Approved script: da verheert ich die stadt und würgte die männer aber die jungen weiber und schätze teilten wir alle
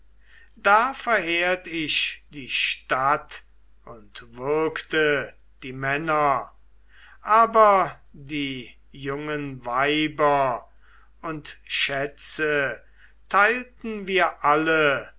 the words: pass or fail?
pass